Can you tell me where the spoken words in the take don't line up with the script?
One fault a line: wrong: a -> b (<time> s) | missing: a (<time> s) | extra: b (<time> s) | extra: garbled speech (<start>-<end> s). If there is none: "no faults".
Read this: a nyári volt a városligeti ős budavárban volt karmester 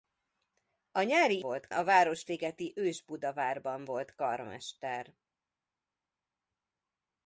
no faults